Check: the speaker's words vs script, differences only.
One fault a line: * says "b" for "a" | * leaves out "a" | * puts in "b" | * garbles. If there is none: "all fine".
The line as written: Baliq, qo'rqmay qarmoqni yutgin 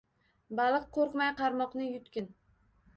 all fine